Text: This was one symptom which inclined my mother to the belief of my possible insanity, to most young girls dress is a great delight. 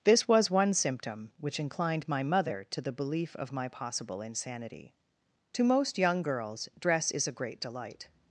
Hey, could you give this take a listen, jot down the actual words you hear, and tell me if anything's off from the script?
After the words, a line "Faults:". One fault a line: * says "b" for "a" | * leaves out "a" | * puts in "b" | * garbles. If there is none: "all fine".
This was one symptom which inclined my mother to the belief of my possible insanity, to most young girls dress is a great delight.
Faults:
all fine